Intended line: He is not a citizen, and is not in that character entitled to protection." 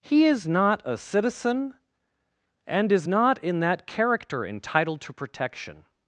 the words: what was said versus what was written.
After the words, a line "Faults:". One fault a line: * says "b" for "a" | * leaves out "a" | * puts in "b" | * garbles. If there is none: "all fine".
He is not a citizen, and is not in that character entitled to protection."
Faults:
all fine